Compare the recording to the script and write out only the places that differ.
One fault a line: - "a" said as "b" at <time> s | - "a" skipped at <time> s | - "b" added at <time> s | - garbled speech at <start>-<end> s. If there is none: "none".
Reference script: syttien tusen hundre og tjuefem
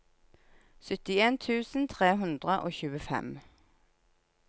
- "tre" added at 1.9 s